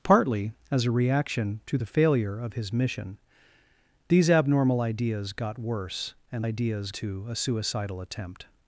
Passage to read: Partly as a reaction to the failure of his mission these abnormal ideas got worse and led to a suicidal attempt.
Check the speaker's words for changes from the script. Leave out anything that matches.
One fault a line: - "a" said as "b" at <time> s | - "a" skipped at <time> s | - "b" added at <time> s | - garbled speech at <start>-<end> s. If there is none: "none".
- "led" said as "ideas" at 6.4 s